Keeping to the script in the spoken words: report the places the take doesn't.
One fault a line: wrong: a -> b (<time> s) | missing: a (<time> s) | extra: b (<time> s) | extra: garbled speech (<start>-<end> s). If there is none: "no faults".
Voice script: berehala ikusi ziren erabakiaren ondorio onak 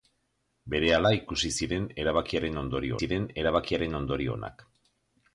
extra: ziren erabakiaren ondorio (3.0 s)